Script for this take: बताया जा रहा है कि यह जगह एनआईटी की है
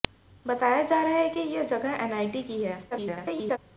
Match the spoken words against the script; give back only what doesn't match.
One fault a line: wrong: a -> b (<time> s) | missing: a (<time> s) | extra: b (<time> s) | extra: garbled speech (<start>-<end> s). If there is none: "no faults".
extra: garbled speech (2.9-3.6 s)